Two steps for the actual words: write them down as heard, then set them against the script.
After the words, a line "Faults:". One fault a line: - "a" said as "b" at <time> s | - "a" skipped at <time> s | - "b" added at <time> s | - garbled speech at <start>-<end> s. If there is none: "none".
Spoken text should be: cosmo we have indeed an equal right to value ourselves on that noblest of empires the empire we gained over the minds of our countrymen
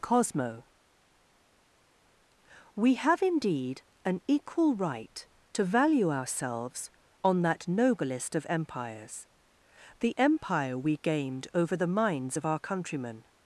cosmo we have indeed an equal right to value ourselves on that noblest of empires the empire we gained over the minds of our countrymen
Faults:
none